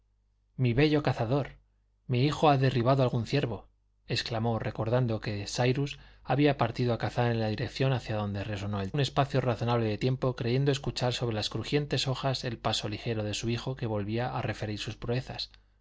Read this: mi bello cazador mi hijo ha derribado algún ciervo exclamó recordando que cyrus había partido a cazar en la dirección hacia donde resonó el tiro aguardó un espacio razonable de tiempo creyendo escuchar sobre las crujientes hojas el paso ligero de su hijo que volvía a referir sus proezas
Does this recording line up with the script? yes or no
no